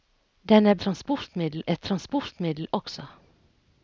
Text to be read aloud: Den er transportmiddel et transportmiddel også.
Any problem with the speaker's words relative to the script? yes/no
no